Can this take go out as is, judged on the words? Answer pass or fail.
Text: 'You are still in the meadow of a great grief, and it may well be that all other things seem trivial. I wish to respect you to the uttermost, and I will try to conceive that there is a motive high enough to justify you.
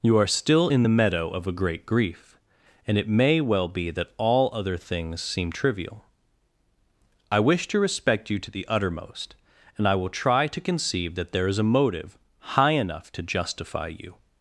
pass